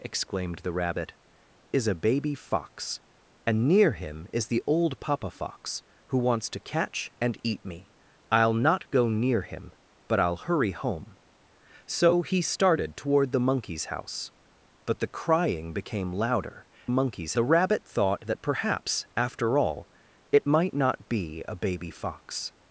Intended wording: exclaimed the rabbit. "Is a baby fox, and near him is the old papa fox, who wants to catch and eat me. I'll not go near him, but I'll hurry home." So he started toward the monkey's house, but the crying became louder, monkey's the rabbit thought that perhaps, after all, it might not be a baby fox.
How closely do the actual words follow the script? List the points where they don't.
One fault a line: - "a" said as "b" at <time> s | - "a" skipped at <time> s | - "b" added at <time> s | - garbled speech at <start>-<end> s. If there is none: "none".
none